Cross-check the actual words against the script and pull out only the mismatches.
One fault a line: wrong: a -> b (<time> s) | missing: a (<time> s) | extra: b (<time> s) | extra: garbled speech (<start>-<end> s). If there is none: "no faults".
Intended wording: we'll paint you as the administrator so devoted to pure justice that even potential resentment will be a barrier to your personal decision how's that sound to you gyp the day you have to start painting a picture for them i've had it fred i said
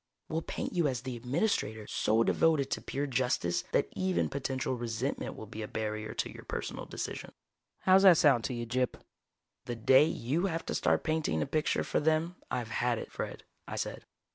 no faults